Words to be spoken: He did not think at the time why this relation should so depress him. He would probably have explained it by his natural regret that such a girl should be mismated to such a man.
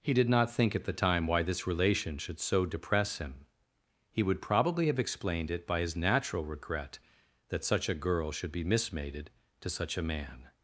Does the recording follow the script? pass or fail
pass